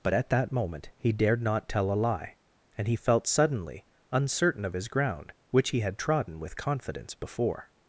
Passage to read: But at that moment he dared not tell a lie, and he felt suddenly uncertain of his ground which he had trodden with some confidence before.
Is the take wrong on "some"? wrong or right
wrong